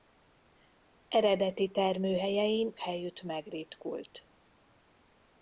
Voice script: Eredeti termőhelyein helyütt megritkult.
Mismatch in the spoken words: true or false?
false